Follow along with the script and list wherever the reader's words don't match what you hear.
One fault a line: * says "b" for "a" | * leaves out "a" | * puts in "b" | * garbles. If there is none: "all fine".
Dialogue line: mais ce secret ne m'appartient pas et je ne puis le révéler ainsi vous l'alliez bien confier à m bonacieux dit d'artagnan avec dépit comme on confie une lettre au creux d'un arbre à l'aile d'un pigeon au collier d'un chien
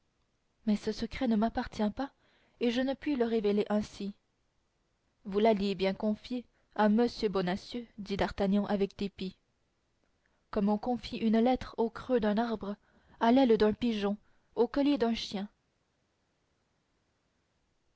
all fine